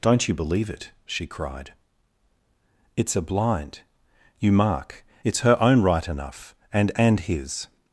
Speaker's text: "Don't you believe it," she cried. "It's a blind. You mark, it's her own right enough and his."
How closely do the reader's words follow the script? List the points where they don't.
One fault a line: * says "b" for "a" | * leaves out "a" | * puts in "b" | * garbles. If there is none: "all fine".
* puts in "and"